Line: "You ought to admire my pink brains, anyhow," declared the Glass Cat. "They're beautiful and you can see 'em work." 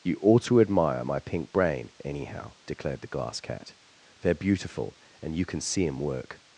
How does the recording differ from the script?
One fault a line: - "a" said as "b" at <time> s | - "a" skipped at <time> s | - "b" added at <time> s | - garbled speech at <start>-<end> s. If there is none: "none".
- "brains" said as "brain" at 1.5 s